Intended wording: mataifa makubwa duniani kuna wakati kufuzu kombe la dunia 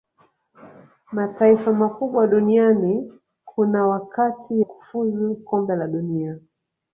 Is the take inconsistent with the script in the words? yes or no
no